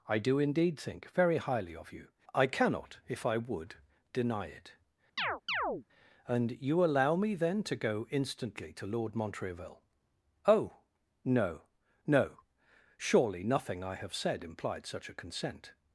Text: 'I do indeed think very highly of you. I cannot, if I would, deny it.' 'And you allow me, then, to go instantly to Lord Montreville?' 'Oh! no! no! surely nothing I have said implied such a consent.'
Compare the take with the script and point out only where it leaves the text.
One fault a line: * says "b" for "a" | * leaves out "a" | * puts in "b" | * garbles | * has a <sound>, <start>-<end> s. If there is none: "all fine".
* has a chirp, 5.2-5.8 s